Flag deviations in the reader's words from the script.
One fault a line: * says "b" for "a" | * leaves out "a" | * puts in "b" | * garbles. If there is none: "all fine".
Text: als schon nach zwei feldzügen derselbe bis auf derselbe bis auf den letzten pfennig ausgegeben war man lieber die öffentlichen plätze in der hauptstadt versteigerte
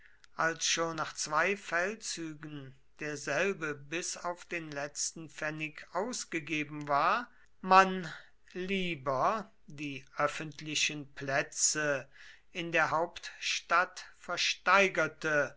* leaves out "derselbe bis auf"